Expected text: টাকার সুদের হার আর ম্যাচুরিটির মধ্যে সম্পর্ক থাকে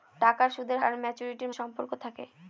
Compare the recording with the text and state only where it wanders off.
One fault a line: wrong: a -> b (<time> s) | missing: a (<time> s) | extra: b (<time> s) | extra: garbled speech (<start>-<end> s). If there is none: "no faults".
missing: হার (0.8 s)
missing: মধ্যে (1.5 s)